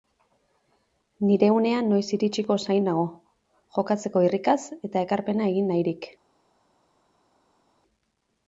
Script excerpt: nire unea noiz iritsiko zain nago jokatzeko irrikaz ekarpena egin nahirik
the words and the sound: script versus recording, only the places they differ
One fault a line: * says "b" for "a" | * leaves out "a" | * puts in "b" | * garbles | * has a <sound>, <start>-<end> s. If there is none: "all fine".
* puts in "eta"